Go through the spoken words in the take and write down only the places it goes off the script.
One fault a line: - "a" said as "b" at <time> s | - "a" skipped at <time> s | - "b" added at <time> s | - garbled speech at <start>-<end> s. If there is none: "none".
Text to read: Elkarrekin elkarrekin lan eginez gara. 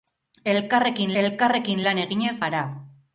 none